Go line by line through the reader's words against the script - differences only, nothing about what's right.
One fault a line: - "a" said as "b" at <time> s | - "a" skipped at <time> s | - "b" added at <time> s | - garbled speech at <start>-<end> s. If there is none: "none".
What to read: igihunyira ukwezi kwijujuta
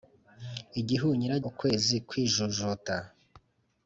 none